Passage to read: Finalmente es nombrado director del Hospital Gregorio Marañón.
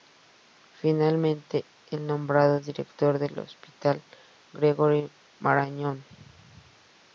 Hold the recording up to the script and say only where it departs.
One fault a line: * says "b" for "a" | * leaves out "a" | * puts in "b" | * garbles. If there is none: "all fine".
all fine